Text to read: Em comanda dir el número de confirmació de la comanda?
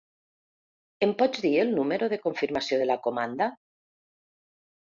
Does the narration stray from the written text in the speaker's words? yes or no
yes